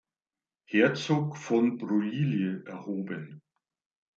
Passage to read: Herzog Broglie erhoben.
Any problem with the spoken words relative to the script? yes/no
yes